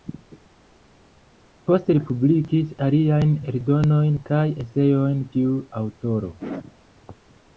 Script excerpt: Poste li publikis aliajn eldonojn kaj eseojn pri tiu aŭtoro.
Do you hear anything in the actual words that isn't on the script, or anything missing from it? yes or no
yes